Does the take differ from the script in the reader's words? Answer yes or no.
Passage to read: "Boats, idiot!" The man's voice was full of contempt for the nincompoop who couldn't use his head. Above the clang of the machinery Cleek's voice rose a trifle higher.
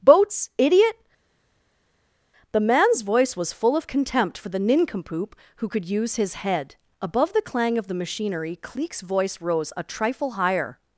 yes